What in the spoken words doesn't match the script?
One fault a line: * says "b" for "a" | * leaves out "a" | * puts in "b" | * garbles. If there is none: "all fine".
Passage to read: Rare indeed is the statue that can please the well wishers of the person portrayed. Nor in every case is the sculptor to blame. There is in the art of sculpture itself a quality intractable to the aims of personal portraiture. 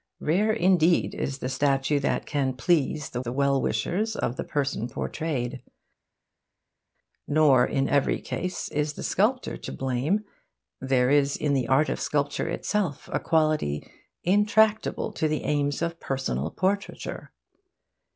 * puts in "the"